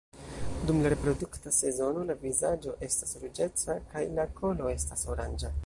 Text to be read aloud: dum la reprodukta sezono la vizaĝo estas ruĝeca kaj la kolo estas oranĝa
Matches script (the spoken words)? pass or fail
pass